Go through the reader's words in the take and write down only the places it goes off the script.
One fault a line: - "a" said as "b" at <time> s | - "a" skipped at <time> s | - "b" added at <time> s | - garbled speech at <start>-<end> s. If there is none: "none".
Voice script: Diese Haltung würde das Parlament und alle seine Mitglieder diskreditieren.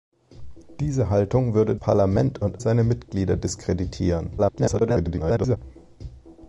- "das" skipped at 1.8 s
- "alle" skipped at 2.6 s
- garbled speech at 4.4-5.6 s